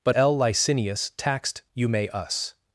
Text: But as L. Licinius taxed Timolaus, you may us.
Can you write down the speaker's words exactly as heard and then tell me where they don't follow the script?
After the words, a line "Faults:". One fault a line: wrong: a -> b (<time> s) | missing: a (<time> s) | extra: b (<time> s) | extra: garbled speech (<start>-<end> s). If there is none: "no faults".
But L. Licinius taxed You may us.
Faults:
missing: as (0.1 s)
missing: Timolaus (1.6 s)